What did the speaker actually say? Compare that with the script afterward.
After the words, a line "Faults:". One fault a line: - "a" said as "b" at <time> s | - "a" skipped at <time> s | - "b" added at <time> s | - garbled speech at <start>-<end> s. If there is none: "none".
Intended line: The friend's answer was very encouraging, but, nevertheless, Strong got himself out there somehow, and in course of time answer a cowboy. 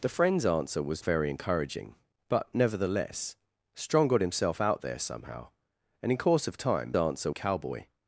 The friend's answer was very encouraging, but, nevertheless, Strong got himself out there somehow, and in course of time answer a cowboy.
Faults:
none